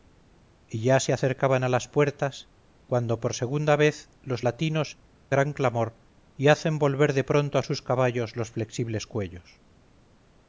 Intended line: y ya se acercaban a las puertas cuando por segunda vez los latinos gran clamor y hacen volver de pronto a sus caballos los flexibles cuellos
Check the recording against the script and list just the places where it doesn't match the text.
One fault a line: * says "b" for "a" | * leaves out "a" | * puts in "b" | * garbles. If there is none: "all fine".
all fine